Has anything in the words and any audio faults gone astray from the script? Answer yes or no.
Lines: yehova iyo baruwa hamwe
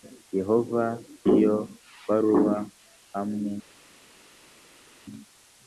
no